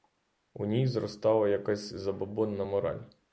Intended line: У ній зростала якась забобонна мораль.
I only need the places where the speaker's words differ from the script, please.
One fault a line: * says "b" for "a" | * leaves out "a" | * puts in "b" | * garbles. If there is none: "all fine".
all fine